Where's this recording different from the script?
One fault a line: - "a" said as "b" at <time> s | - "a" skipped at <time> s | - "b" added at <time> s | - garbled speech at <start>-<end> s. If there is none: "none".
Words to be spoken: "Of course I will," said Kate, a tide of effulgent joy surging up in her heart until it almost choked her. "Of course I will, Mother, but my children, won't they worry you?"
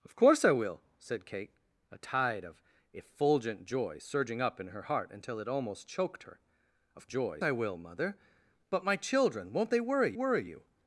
- "course" said as "joy" at 7.1 s
- "worry" added at 10.1 s